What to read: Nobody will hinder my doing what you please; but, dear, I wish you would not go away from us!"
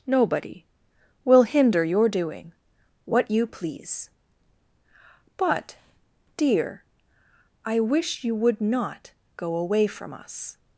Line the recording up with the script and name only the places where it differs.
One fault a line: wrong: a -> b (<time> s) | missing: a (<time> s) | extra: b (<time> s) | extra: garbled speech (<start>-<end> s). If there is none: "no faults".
wrong: my -> your (1.8 s)